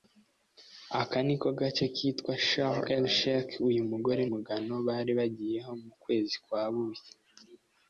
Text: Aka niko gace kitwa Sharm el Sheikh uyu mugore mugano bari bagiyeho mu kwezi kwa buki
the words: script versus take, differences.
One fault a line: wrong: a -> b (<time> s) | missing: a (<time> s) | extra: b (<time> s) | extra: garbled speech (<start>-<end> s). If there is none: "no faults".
no faults